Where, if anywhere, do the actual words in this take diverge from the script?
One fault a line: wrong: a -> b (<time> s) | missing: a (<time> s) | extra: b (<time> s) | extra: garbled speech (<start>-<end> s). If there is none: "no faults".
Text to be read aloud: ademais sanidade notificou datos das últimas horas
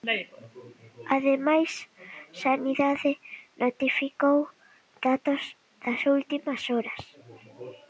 no faults